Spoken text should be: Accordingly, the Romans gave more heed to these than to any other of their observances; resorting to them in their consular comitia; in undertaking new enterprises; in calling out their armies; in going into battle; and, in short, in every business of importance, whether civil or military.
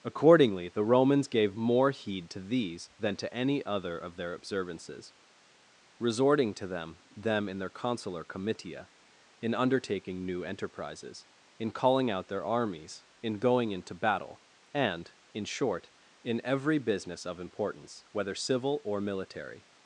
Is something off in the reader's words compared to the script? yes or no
yes